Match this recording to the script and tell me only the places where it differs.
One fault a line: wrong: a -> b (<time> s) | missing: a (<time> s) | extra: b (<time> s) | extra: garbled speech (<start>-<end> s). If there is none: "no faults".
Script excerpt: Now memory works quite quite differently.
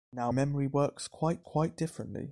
no faults